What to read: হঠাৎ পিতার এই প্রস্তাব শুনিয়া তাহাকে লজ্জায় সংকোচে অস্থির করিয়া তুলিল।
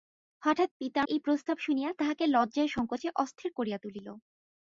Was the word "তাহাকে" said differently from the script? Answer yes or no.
no